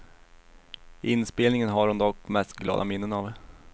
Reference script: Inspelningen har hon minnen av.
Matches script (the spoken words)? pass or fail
fail